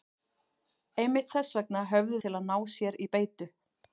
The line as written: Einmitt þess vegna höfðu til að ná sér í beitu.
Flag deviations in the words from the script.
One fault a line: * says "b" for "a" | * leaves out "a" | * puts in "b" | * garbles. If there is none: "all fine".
all fine